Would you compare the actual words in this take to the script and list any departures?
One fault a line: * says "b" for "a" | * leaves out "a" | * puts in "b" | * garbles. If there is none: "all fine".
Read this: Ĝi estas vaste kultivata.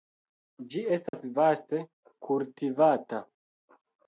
all fine